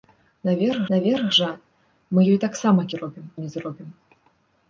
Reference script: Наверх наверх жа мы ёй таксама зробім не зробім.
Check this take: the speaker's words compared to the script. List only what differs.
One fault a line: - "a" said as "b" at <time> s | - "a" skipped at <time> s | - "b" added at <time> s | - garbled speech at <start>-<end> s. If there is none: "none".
none